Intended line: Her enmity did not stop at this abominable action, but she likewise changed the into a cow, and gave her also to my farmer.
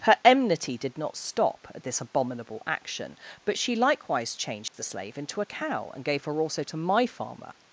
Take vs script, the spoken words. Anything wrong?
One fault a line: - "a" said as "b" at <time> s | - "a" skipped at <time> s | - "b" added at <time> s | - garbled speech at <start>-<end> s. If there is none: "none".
- "slave" added at 4.8 s